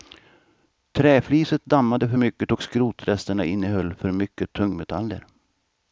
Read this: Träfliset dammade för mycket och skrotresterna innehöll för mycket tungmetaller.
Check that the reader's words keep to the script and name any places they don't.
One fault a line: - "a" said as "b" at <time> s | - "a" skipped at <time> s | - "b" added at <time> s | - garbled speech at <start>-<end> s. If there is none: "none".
none